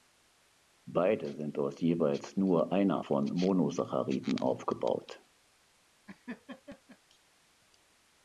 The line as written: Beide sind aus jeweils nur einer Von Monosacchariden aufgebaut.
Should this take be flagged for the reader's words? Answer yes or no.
no